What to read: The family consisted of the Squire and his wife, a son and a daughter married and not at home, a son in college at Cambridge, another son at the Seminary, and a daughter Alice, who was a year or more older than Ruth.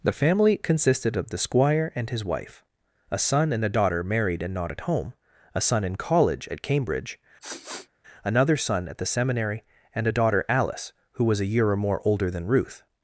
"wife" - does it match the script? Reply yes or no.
yes